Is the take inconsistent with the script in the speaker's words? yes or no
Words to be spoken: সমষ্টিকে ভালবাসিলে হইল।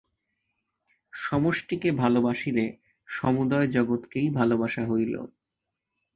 yes